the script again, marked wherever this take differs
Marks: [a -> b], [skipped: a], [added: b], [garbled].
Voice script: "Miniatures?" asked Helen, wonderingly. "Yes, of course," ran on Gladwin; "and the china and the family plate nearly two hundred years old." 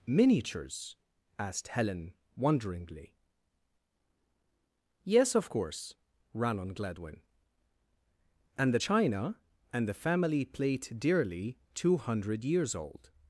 "Miniatures?" asked Helen, wonderingly. "Yes, of course," ran on Gladwin; "and the china and the family plate [nearly -> dearly] two hundred years old."